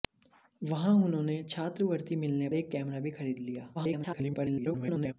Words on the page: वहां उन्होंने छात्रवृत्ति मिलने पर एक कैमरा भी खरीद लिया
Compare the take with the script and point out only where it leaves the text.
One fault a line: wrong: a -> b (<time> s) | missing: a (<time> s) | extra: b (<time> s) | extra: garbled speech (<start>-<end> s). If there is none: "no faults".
missing: पर (2.5 s)
extra: garbled speech (3.7-5.1 s)